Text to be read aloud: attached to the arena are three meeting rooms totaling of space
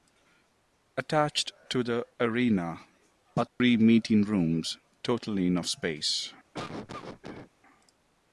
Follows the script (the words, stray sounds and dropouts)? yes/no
no